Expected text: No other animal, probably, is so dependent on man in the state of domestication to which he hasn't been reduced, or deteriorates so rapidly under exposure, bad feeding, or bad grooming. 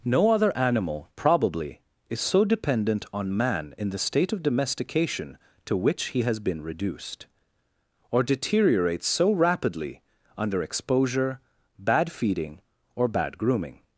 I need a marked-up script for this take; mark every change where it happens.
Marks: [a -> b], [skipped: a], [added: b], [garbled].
No other animal, probably, is so dependent on man in the state of domestication to which he [hasn't -> has] been reduced, or deteriorates so rapidly under exposure, bad feeding, or bad grooming.